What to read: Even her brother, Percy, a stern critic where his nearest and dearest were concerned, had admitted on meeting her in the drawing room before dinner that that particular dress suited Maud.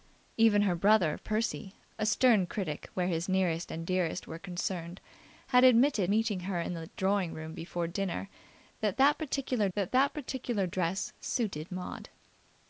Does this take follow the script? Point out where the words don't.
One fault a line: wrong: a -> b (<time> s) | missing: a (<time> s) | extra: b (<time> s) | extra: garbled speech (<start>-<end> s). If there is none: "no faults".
missing: on (6.1 s)
extra: that that particular (9.7 s)